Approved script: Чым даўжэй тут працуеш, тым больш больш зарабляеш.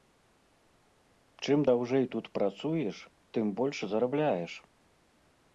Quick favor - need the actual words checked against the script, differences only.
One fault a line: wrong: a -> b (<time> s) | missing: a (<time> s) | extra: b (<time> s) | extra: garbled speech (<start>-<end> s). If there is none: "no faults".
missing: больш (3.8 s)